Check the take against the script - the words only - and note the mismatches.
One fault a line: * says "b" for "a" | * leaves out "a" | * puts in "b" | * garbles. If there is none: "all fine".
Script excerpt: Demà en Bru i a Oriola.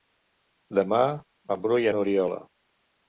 all fine